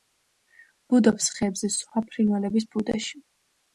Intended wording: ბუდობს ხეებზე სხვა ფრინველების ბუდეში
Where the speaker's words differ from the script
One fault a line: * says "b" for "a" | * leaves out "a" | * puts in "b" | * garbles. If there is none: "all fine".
all fine